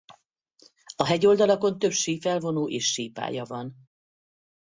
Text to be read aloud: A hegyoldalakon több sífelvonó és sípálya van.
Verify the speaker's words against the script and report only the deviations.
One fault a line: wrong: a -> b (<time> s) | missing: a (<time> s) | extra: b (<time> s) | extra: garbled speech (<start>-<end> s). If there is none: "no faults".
no faults